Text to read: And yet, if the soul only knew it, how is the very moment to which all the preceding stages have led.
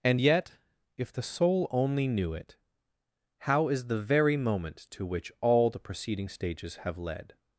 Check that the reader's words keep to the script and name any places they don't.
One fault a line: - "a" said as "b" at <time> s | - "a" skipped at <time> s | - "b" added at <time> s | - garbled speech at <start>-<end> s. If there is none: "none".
none